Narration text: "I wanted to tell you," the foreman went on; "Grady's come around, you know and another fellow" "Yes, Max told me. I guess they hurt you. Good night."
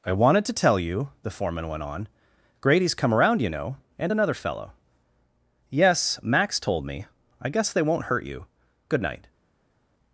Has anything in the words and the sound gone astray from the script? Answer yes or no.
yes